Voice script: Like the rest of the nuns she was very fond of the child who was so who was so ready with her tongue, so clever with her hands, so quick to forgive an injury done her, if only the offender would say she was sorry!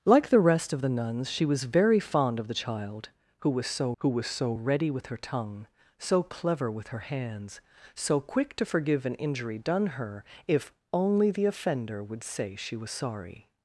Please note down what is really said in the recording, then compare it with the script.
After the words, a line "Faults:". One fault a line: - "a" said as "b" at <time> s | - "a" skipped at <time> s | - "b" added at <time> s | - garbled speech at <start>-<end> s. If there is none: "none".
Like the rest of the nuns she was very fond of the child who was so who was so ready with her tongue, so clever with her hands, so quick to forgive an injury done her, if only the offender would say she was sorry!
Faults:
none